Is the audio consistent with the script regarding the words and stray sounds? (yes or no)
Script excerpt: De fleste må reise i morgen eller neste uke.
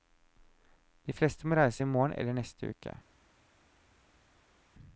yes